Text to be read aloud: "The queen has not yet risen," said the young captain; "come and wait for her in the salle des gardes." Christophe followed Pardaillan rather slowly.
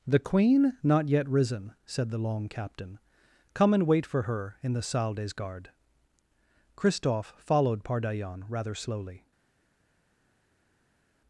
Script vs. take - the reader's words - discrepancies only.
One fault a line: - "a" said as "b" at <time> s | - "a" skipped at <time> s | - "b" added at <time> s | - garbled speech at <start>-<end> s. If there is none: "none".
- "has" skipped at 0.7 s
- "young" said as "long" at 2.2 s